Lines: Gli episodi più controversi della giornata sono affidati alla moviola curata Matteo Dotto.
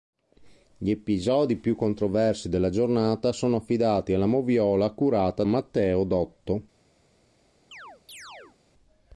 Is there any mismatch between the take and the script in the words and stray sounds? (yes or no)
yes